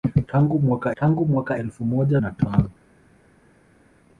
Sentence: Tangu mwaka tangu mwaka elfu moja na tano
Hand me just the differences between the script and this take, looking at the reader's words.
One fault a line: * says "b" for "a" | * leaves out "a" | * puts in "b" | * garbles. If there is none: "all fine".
all fine